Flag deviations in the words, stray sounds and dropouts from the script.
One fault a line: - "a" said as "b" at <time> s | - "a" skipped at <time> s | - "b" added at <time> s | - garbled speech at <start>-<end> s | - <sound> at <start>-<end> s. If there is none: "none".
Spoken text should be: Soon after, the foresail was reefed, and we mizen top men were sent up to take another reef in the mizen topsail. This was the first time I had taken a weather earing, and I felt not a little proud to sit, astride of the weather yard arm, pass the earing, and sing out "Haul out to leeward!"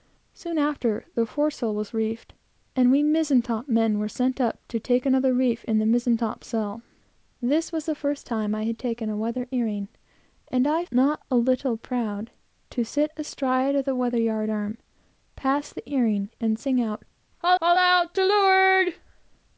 - "felt" skipped at 10.8 s
- "haul" added at 17.6 s